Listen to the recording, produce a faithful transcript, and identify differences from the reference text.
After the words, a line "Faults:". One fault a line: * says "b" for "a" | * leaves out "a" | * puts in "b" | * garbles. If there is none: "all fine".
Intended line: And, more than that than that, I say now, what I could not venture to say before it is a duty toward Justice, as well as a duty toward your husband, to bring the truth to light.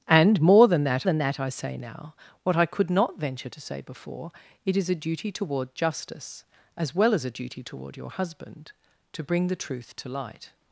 And, more than that than that, I say now, what I could not venture to say before it is a duty toward Justice, as well as a duty toward your husband, to bring the truth to light.
Faults:
all fine